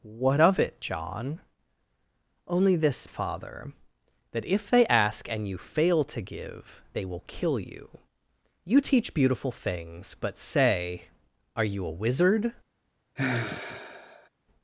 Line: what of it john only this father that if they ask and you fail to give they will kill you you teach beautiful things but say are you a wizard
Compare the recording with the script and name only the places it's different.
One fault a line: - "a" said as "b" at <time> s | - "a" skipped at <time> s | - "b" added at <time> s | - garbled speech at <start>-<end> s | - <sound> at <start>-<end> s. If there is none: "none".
- sigh at 13.2-14.3 s